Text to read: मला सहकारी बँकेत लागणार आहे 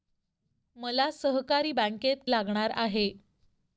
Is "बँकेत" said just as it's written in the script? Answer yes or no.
yes